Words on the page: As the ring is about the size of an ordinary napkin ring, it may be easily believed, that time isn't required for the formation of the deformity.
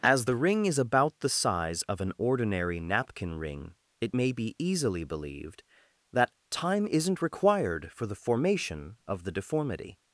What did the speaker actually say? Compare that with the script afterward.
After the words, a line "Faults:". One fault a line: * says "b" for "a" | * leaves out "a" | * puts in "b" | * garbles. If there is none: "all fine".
As the ring is about the size of an ordinary napkin ring, it may be easily believed, that time isn't required for the formation of the deformity.
Faults:
all fine